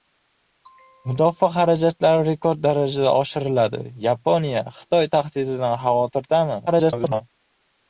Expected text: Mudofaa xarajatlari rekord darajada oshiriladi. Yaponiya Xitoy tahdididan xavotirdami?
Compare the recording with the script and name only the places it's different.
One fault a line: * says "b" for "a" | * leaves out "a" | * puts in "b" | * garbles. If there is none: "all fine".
* garbles